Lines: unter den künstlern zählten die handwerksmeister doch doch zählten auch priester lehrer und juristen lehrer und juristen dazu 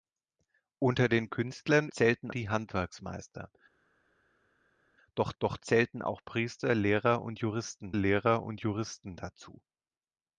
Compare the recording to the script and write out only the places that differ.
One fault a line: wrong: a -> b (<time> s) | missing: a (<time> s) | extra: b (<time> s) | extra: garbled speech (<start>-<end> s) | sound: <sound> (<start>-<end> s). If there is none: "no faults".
no faults